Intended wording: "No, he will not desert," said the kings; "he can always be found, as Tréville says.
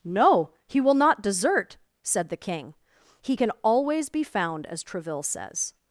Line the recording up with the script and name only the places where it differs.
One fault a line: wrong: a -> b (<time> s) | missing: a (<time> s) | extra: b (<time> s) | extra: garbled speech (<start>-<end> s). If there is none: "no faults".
wrong: kings -> king (2.4 s)